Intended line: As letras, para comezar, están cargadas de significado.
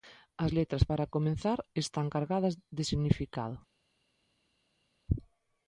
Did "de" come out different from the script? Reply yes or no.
no